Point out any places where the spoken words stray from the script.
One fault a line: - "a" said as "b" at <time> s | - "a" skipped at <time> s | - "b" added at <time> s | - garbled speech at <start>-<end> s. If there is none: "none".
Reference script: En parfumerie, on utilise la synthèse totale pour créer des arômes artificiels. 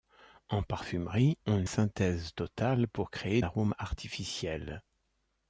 - "utilise la" skipped at 1.6 s
- "des" skipped at 3.4 s